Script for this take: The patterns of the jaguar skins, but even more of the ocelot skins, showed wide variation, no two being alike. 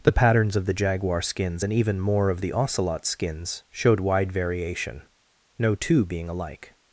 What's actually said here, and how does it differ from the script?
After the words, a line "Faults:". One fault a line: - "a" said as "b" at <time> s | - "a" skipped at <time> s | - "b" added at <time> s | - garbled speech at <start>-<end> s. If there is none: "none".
The patterns of the jaguar skins, and even more of the ocelot skins, showed wide variation, no two being alike.
Faults:
- "but" said as "and" at 1.6 s